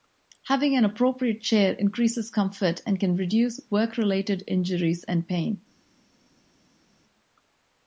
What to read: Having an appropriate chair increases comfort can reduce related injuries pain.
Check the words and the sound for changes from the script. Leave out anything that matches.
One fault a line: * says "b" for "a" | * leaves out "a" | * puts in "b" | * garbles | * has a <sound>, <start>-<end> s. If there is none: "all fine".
* puts in "and"
* puts in "work"
* puts in "and"